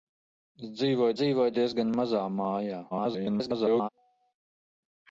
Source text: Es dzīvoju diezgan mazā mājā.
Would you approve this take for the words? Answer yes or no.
no